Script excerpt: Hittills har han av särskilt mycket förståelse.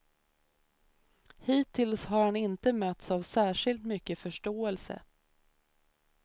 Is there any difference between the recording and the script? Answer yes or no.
yes